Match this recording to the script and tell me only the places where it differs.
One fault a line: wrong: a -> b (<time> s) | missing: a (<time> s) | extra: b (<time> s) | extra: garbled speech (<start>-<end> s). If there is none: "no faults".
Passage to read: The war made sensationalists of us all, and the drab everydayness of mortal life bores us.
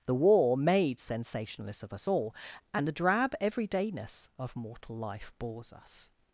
no faults